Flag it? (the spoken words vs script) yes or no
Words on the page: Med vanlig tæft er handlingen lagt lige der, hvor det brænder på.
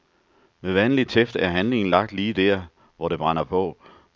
no